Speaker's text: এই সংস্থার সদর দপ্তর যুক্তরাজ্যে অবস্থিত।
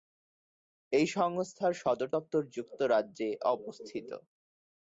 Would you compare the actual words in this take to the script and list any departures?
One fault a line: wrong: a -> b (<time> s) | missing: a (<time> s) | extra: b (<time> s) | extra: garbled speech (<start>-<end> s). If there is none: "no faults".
no faults